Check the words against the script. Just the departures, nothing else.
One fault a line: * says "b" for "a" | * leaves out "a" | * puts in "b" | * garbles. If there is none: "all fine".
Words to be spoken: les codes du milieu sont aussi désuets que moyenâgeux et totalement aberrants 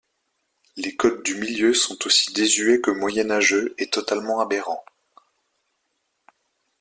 all fine